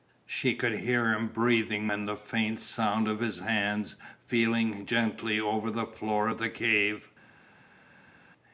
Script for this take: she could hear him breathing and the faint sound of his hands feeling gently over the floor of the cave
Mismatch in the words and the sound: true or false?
false